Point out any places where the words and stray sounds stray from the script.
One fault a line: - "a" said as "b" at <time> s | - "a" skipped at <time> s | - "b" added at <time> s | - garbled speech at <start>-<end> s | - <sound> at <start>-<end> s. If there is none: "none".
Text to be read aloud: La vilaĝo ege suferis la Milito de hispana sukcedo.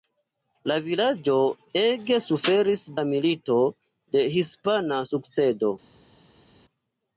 none